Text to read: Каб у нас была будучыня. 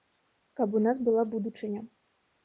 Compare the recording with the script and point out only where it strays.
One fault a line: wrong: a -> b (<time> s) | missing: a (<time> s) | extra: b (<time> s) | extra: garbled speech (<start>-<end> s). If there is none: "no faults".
no faults